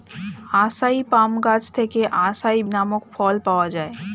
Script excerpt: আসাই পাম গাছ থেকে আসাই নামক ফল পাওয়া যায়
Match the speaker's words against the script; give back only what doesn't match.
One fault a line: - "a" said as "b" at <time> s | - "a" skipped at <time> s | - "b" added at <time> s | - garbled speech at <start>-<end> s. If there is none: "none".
none